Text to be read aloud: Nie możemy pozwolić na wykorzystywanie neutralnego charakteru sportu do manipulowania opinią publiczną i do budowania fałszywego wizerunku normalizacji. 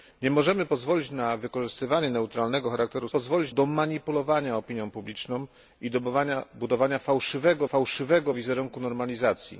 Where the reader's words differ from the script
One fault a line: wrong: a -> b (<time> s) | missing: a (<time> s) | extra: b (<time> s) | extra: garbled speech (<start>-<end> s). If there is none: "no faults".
wrong: sportu -> pozwolić (3.1 s)
extra: fałszywego (7.6 s)